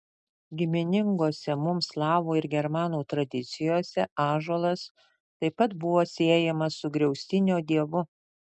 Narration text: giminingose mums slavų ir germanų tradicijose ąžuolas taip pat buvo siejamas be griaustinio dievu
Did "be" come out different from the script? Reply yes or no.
yes